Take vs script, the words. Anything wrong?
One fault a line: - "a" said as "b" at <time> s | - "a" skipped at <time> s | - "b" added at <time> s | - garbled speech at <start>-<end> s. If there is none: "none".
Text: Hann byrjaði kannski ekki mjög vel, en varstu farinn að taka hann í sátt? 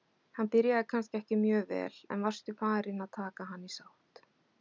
none